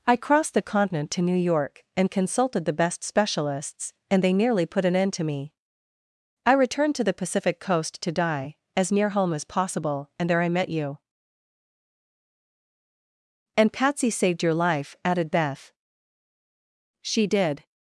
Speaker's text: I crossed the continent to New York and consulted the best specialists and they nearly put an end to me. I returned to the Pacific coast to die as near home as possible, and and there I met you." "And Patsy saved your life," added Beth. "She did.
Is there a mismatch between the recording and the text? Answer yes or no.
yes